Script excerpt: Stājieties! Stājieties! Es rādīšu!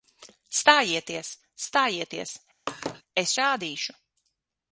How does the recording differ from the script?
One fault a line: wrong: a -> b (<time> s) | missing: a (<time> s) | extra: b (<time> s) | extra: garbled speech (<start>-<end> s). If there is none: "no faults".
no faults